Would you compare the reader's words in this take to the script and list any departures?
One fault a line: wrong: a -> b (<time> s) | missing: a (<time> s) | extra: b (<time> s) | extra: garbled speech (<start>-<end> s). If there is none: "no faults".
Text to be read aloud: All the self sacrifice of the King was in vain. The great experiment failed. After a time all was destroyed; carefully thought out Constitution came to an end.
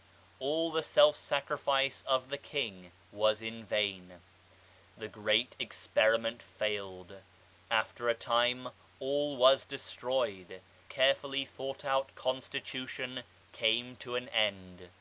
no faults